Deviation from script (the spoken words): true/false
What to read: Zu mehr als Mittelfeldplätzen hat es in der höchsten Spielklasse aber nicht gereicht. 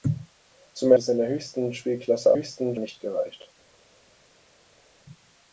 true